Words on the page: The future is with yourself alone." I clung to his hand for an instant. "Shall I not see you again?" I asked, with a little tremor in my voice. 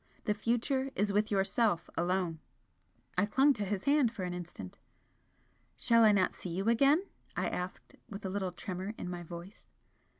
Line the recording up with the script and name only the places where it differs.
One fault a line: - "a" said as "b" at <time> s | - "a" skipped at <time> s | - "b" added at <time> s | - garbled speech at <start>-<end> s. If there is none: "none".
none